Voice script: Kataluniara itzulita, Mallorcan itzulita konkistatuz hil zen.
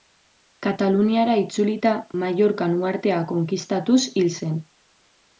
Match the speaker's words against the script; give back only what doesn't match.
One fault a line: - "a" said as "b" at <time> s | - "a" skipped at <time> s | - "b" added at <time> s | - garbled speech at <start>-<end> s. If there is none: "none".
- "itzulita" said as "uhartea" at 2.8 s